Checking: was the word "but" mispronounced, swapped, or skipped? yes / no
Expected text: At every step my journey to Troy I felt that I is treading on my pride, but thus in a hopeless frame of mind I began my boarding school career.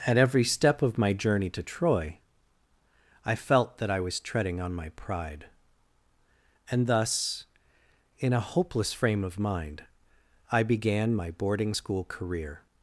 yes